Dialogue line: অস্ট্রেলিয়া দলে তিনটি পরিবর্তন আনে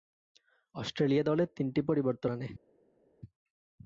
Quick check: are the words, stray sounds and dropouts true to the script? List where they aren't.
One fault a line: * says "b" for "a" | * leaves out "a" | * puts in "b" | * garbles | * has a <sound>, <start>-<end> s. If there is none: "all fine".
all fine